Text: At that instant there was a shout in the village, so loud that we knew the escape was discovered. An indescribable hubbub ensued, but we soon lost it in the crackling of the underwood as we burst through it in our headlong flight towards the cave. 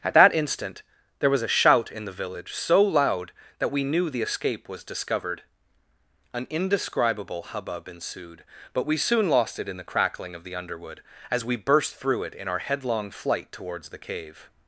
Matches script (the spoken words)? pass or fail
pass